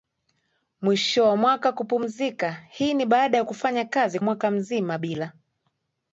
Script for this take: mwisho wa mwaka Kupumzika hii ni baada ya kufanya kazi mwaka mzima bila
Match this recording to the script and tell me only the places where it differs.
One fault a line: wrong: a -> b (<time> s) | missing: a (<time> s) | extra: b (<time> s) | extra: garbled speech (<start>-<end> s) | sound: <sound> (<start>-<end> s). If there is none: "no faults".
no faults